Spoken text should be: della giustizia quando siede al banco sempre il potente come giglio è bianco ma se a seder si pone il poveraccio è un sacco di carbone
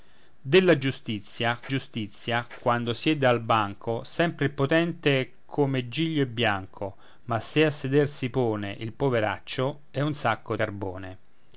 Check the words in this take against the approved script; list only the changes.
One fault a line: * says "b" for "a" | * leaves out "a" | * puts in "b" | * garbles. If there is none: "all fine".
* puts in "giustizia"
* leaves out "di"